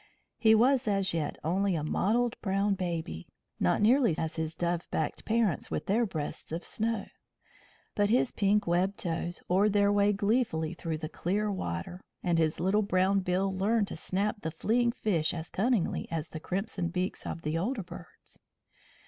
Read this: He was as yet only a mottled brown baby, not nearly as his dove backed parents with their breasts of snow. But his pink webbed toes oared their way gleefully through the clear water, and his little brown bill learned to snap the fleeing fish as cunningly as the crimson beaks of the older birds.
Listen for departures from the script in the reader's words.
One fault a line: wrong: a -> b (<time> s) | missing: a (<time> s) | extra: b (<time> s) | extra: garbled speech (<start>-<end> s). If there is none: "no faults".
no faults